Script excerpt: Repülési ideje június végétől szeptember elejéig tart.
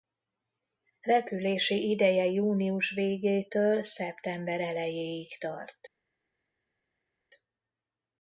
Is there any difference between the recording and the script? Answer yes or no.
no